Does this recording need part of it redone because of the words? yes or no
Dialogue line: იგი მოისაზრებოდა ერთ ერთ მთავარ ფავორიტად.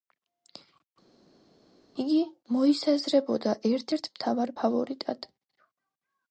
no